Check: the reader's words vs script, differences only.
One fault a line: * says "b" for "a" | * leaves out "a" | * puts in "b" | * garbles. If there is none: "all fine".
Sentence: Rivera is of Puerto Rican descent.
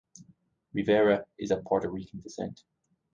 all fine